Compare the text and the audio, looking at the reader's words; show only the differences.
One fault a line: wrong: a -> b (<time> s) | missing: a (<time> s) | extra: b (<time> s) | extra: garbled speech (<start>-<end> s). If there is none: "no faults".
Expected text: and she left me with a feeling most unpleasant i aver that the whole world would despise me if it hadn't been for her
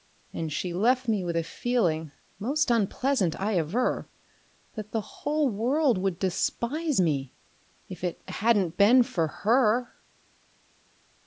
no faults